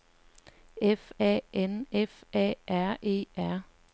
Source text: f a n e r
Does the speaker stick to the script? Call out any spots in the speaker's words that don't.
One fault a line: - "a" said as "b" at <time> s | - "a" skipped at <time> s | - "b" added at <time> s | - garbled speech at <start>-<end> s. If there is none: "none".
- "f a r" added at 1.9 s